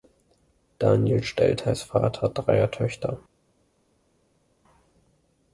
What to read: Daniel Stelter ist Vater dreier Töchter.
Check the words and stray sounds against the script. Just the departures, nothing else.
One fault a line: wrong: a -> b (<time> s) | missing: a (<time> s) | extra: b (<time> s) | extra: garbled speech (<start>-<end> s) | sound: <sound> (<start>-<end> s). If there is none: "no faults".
no faults